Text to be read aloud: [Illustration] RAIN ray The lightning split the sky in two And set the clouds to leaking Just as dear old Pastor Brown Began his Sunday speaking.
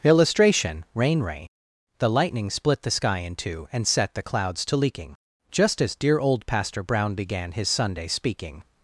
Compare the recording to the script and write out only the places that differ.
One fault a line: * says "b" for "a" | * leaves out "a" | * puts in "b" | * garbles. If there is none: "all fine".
all fine